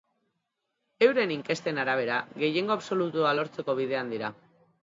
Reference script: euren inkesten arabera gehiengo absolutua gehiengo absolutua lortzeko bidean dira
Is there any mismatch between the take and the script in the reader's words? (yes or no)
yes